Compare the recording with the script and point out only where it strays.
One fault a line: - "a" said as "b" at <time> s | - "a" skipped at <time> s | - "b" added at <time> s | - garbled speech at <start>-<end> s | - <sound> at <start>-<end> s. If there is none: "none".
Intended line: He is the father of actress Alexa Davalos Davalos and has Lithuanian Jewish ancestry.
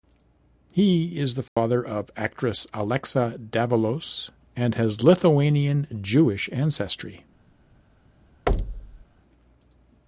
- dropout at 1.5-1.6 s
- "Davalos" skipped at 4.3 s
- thud at 8.5-9.1 s